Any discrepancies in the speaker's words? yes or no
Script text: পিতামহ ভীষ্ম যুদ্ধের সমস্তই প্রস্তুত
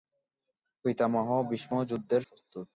yes